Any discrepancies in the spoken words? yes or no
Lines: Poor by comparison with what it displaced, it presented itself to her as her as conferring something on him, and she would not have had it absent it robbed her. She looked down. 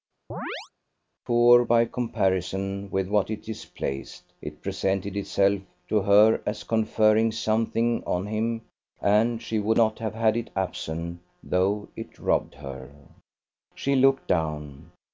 yes